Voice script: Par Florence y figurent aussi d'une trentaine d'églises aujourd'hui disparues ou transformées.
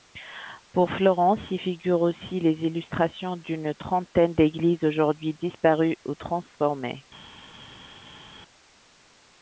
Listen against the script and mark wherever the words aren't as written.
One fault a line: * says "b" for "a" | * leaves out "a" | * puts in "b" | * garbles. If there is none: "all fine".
* says "Pour" for "Par"
* puts in "les illustrations"